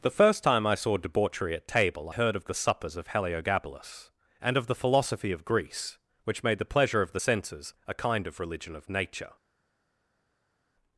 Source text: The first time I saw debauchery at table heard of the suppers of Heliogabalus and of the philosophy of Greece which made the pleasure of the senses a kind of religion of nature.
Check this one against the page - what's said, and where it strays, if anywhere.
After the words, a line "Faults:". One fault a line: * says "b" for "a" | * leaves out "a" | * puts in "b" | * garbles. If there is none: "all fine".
The first time I saw debauchery at table heard of the suppers of Heliogabalus and of the philosophy of Greece which made the pleasure of the senses a kind of religion of nature.
Faults:
all fine